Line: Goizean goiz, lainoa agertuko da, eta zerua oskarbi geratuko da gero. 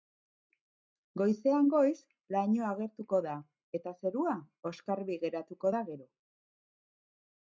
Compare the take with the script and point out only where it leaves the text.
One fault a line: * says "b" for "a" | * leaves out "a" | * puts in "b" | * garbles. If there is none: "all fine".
all fine